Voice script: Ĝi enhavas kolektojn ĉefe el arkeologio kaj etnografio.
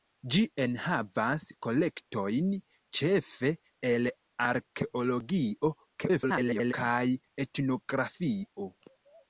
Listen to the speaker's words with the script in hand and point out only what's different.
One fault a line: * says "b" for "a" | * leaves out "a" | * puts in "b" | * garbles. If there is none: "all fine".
* garbles